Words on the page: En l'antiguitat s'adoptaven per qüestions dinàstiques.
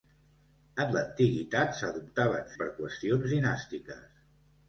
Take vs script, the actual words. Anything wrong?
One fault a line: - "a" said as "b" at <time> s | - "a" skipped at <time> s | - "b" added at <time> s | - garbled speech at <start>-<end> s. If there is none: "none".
none